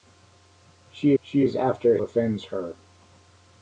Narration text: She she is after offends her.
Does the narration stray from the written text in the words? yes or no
no